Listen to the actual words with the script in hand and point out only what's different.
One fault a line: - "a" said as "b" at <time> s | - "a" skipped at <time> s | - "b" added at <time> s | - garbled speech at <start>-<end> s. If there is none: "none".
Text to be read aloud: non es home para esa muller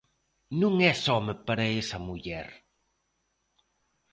none